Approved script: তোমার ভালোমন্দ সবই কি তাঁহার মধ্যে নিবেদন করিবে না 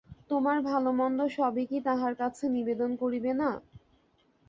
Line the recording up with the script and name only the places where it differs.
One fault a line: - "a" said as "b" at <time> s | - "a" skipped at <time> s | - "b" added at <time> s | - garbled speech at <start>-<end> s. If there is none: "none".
- "মধ্যে" said as "কাছে" at 2.2 s